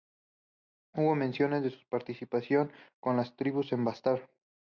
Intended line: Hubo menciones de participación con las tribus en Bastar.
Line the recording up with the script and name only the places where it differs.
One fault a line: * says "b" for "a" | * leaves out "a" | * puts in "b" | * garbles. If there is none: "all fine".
* puts in "su"